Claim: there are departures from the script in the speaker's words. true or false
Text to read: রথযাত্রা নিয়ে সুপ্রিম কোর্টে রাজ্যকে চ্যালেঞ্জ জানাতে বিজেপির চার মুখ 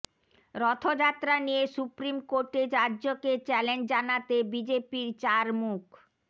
false